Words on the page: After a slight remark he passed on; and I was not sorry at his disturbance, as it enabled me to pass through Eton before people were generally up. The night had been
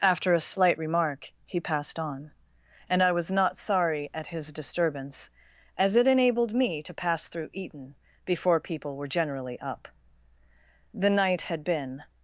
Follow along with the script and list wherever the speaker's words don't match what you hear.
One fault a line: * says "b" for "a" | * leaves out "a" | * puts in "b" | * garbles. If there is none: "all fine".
all fine